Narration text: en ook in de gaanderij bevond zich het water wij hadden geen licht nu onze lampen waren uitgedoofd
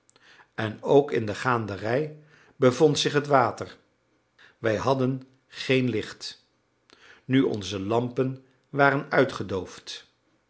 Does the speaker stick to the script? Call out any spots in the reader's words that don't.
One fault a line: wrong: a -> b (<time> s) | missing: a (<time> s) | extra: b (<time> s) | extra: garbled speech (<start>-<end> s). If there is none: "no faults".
no faults